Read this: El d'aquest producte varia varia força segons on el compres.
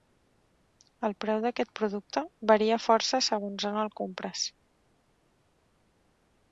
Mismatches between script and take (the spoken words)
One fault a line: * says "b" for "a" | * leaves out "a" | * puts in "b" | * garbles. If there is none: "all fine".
* puts in "preu"
* leaves out "varia"